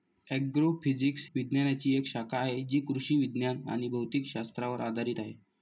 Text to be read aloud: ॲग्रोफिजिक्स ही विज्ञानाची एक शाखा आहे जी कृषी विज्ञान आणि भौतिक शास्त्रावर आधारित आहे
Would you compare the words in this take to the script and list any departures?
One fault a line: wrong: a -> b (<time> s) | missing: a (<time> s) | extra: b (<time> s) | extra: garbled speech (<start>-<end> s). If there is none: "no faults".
missing: ही (1.2 s)